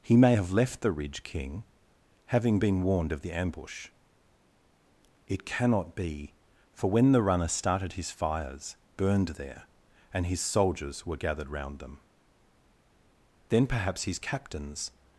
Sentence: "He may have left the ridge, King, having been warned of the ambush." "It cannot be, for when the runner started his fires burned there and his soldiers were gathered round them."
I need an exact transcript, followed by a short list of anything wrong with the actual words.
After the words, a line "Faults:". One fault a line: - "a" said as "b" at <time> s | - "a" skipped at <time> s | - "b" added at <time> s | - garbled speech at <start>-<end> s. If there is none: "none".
"He may have left the ridge, King, having been warned of the ambush." "It cannot be, for when the runner started his fires burned there and his soldiers were gathered round them." "Then perhaps his captains
Faults:
- "Then perhaps his captains" added at 13.5 s